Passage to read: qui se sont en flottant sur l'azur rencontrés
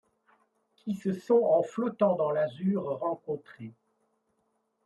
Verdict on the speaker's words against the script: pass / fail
fail